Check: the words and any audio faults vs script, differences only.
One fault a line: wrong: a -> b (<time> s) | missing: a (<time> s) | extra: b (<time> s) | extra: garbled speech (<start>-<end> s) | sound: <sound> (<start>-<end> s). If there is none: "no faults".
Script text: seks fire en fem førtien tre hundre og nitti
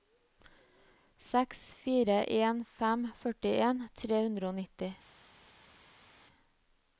no faults